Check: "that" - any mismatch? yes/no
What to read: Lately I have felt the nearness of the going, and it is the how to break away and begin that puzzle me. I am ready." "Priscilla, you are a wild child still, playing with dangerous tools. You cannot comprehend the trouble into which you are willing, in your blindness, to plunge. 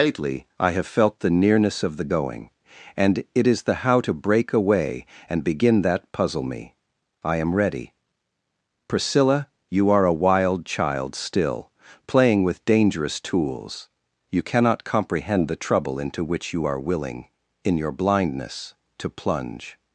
no